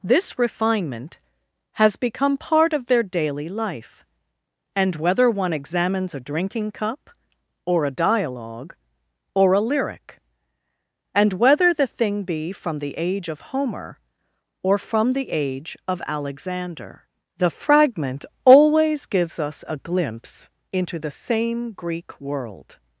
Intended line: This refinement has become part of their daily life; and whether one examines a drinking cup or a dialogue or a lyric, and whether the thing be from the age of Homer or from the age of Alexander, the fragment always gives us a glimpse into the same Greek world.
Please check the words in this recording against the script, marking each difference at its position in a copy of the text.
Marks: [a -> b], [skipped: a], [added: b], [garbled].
This refinement has become part of their daily life; and whether one examines a drinking cup or a dialogue or a lyric, and whether the thing be from the age of Homer or from the age of Alexander, the fragment always gives us a glimpse into the same Greek world.